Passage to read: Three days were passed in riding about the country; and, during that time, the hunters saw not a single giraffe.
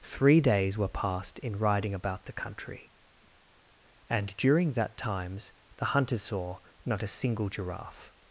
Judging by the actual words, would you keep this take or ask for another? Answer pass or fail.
fail